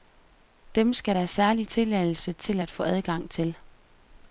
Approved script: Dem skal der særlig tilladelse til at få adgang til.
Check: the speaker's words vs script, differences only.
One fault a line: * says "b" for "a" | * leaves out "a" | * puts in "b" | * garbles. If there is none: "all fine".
all fine